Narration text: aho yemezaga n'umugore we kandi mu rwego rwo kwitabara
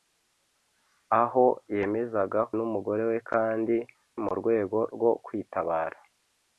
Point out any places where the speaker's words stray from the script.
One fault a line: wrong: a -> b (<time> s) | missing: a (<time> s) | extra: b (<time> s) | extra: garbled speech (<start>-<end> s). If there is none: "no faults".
no faults